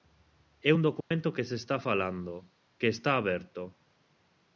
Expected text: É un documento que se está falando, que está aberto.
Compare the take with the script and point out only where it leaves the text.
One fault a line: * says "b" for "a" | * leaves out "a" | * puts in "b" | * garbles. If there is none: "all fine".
all fine